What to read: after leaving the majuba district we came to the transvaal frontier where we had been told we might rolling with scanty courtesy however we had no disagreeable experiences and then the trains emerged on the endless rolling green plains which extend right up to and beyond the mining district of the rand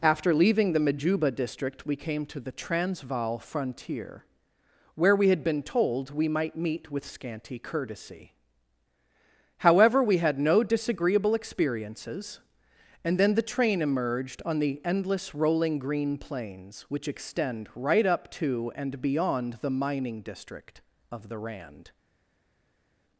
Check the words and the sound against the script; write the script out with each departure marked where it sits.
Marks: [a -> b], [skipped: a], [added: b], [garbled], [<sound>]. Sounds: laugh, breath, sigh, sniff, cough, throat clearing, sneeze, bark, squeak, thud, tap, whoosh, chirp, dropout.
after leaving the majuba district we came to the transvaal frontier where we had been told we might [rolling -> meet] with scanty courtesy however we had no disagreeable experiences and then the [trains -> train] emerged on the endless rolling green plains which extend right up to and beyond the mining district of the rand